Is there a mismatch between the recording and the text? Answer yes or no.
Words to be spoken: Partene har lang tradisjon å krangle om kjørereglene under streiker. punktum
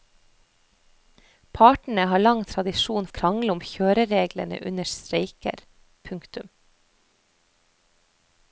no